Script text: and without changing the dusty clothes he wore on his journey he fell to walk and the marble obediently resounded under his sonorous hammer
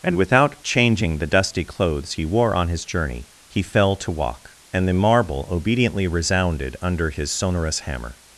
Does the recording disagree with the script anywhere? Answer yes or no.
no